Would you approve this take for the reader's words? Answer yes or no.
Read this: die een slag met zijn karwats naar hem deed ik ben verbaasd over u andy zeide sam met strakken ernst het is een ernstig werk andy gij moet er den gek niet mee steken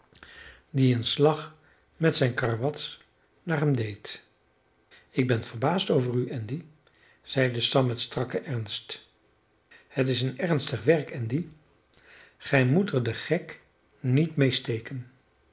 yes